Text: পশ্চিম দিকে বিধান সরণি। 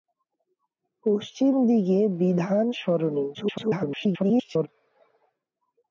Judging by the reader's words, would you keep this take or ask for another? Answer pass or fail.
fail